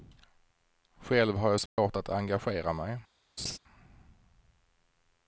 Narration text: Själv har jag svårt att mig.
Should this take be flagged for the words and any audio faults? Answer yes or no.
yes